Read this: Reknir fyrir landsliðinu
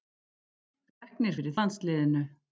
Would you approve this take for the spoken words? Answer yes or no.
yes